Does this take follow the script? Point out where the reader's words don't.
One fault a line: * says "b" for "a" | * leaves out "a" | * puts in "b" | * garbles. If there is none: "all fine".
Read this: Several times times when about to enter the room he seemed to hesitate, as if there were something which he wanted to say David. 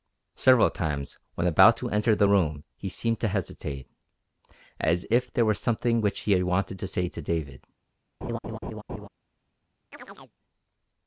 * leaves out "times"
* puts in "to"